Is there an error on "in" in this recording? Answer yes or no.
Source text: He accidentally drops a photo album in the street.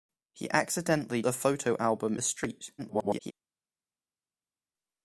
yes